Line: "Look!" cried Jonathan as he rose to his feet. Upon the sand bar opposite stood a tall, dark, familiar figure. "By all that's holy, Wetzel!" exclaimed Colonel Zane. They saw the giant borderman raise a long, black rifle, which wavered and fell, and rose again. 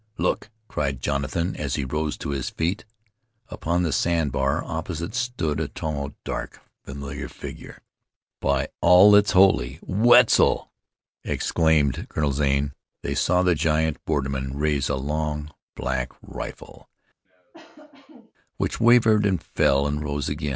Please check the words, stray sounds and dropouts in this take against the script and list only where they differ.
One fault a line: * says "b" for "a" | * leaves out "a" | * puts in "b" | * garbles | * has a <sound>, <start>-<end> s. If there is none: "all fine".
* has a cough, 17.3-18.3 s